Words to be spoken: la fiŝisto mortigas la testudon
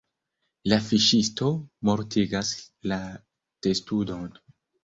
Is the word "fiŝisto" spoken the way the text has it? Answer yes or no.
yes